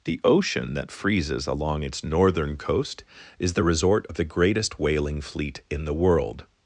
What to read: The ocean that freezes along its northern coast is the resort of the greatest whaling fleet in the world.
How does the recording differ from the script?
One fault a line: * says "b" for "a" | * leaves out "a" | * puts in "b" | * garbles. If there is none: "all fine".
all fine